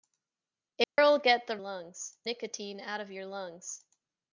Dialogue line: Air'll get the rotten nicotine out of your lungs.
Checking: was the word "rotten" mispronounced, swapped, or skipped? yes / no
yes